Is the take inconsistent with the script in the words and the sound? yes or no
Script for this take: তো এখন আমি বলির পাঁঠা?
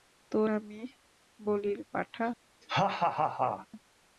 yes